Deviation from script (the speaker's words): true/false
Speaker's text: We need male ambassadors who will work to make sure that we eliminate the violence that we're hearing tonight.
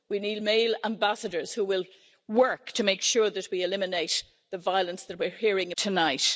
false